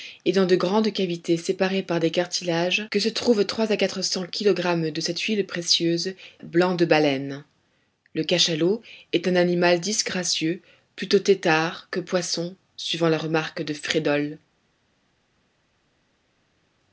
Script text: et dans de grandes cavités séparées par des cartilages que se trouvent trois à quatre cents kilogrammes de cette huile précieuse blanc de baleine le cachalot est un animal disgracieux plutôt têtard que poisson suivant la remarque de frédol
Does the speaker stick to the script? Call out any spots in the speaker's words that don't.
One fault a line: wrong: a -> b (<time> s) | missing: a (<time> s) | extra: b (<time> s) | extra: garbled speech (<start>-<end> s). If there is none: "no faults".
no faults